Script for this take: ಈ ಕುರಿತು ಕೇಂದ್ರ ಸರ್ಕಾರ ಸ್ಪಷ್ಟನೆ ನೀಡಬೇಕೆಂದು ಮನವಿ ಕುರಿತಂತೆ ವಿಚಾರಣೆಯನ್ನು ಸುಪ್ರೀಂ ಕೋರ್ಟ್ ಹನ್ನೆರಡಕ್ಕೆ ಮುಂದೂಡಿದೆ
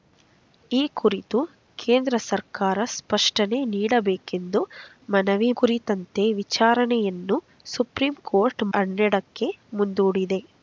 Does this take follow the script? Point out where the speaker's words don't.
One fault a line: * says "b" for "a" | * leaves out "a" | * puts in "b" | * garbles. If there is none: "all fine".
all fine